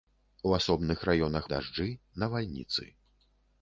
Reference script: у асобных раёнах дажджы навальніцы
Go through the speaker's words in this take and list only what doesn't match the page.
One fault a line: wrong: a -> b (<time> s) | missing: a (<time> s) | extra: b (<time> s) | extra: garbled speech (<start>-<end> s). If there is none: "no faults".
no faults